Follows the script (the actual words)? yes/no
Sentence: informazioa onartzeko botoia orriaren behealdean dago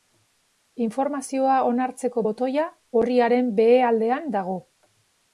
yes